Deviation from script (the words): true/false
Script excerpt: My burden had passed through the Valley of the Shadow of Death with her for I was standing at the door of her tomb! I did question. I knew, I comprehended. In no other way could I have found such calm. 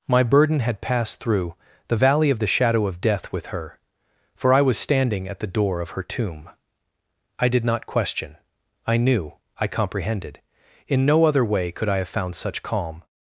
true